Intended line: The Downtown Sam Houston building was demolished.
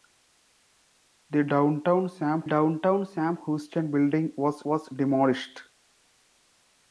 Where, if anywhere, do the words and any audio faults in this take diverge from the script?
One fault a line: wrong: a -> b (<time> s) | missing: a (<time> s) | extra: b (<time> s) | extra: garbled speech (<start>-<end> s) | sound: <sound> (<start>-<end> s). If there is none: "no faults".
extra: Downtown Sam (2.5 s)
extra: was (4.7 s)